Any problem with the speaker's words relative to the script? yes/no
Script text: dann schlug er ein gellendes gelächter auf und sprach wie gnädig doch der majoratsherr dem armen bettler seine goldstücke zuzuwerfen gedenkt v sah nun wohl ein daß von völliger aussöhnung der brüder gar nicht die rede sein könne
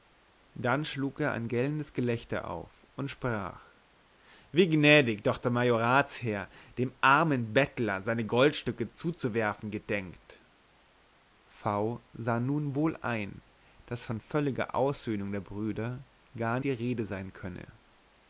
yes